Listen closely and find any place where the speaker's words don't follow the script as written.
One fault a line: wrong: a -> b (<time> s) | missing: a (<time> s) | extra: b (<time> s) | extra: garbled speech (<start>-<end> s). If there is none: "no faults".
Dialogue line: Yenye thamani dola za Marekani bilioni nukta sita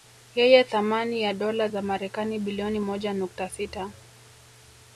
extra: ya (1.2 s)
extra: moja (2.8 s)